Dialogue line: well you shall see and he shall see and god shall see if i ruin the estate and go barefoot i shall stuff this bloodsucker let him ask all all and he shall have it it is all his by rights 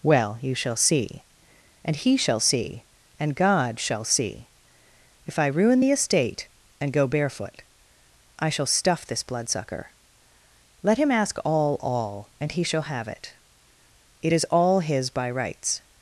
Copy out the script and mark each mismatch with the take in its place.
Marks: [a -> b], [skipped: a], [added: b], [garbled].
well you shall see and he shall see and god shall see if i ruin the estate and go barefoot i shall stuff this bloodsucker let him ask all all and he shall have it it is all his by rights